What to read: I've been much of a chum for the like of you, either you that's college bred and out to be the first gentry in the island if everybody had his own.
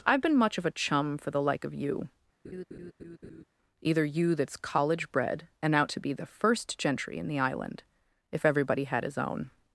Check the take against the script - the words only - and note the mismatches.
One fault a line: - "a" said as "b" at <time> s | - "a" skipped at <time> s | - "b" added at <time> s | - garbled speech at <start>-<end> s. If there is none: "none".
none